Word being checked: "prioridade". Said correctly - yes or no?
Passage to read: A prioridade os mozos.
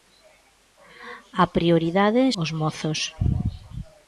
yes